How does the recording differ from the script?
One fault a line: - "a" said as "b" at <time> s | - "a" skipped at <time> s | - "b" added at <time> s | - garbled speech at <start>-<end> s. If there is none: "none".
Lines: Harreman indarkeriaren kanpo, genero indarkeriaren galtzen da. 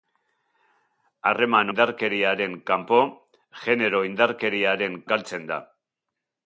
none